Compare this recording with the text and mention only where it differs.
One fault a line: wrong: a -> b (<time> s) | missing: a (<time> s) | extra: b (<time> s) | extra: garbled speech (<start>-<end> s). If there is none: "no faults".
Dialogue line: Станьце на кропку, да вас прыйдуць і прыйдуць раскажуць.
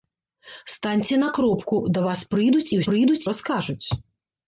no faults